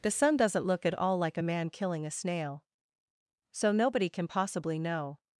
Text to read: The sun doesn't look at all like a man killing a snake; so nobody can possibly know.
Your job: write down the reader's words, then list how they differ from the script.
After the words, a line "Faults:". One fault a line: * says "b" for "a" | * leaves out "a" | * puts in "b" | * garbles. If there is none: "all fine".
The sun doesn't look at all like a man killing a snail; so nobody can possibly know.
Faults:
* says "snail" for "snake"